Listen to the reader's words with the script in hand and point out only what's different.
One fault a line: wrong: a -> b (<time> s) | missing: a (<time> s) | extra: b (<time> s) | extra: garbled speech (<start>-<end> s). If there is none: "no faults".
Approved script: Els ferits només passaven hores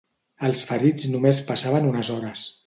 extra: unes (1.9 s)